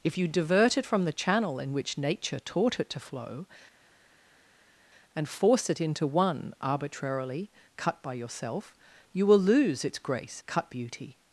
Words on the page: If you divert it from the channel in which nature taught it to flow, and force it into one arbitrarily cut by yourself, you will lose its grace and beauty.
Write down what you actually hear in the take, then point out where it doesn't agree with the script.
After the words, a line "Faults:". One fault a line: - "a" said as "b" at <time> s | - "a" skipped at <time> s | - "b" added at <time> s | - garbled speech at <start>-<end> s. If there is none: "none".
If you divert it from the channel in which nature taught it to flow, and force it into one arbitrarily cut by yourself, you will lose its grace cut beauty.
Faults:
- "and" said as "cut" at 10.5 s